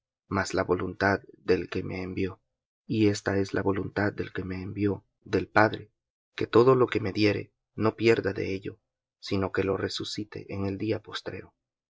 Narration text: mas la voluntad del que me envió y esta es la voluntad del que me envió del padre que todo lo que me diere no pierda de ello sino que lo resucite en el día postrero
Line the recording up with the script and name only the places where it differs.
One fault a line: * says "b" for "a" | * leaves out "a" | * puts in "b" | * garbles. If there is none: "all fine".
all fine